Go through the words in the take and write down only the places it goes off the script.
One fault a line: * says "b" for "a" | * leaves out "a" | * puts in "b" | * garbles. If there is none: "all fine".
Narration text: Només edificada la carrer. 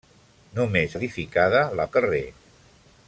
all fine